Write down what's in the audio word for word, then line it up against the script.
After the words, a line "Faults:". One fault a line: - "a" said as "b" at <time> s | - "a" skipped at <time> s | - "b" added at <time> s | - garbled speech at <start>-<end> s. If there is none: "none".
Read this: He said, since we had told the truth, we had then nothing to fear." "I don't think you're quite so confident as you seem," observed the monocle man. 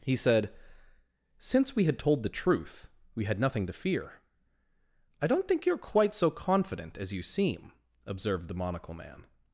He said, since we had told the truth, we had nothing to fear." "I don't think you're quite so confident as you seem," observed the monocle man.
Faults:
- "then" skipped at 3.4 s